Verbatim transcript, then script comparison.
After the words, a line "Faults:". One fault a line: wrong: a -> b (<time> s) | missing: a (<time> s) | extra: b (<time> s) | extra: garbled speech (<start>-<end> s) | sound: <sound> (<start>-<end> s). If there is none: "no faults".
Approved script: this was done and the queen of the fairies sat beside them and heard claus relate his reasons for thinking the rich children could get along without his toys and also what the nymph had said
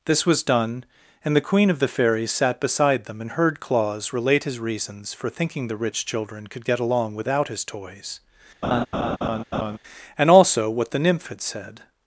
this was done and the queen of the fairies sat beside them and heard claus relate his reasons for thinking the rich children could get along without his toys and also what the nymph had said
Faults:
sound: laugh (8.6-9.8 s)